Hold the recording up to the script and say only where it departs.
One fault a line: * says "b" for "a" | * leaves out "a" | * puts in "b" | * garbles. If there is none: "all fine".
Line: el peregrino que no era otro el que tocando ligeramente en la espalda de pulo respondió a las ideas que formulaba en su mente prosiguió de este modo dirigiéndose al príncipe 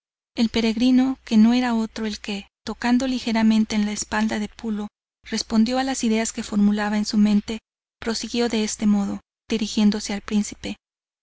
all fine